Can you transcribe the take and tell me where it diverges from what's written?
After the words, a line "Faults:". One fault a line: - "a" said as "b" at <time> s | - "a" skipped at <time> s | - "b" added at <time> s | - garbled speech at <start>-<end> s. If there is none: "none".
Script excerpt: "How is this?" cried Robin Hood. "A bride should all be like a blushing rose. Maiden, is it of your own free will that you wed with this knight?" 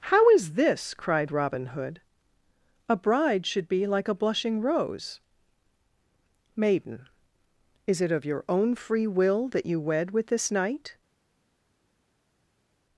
"How is this?" cried Robin Hood. "A bride should be like a blushing rose. Maiden, is it of your own free will that you wed with this knight?"
Faults:
- "all" skipped at 3.7 s